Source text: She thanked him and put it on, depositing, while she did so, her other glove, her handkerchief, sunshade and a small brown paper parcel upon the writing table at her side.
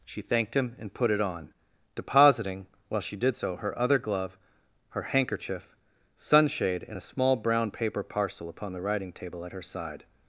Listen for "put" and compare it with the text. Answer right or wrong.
right